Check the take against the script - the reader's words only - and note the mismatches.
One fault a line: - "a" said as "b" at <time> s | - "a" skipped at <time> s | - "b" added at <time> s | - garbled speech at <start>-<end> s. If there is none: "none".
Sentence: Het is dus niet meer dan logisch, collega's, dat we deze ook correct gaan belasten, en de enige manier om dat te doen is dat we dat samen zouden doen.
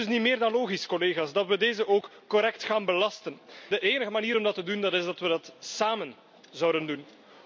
- "en" skipped at 3.4 s